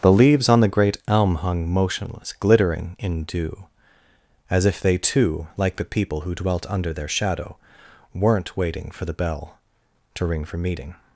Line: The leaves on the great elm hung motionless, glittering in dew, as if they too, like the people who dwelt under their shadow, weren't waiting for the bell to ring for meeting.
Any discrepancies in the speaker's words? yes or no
no